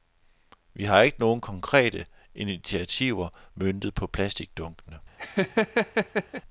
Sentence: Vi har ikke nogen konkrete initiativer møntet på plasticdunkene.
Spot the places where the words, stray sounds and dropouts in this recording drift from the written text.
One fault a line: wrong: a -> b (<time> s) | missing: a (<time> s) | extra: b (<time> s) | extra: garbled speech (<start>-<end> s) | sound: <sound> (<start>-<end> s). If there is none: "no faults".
sound: laugh (5.2-6.4 s)